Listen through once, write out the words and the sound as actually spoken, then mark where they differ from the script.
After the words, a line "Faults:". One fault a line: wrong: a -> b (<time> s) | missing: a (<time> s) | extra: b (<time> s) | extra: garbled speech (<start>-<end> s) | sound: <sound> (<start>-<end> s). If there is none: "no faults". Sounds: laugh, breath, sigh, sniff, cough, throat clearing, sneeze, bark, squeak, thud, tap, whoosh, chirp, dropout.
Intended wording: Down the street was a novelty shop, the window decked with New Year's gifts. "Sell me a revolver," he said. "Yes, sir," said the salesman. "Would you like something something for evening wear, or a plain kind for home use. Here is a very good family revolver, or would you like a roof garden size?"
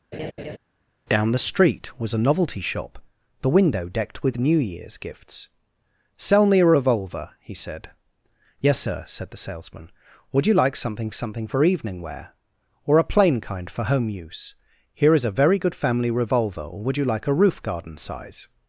Down the street was a novelty shop, the window decked with New Year's gifts. "Sell me a revolver," he said. "Yes, sir," said the salesman. "Would you like something something for evening wear, or a plain kind for home use. Here is a very good family revolver, or would you like a roof garden size?"
Faults:
sound: laugh (0.1-0.6 s)